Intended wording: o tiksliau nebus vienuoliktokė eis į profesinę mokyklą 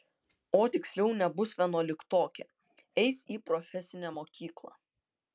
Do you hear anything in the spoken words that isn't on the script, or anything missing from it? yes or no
no